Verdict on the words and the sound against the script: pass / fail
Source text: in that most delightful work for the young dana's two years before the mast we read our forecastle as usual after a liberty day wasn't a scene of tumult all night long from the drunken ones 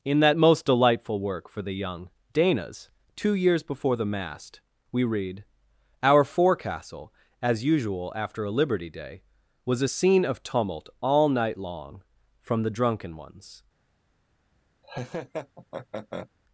fail